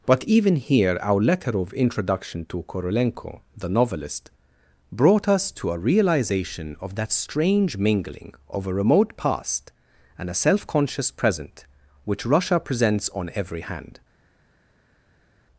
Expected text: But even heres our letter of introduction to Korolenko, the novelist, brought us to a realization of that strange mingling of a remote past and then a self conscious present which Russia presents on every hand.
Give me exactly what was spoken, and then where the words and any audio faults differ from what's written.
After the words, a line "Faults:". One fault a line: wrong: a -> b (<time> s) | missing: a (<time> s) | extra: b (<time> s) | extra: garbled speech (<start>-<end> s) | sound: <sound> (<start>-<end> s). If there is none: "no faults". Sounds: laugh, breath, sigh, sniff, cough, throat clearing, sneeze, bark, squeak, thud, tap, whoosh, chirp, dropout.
But even here our letter of introduction to Korolenko, the novelist, brought us to a realization of that strange mingling of a remote past and a self conscious present which Russia presents on every hand.
Faults:
wrong: heres -> here (0.6 s)
missing: then (10.3 s)